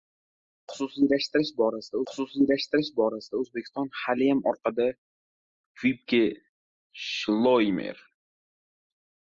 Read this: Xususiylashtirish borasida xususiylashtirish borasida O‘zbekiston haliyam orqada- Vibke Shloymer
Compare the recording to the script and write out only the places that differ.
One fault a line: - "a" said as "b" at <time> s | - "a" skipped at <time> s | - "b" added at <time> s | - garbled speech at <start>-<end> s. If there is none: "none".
none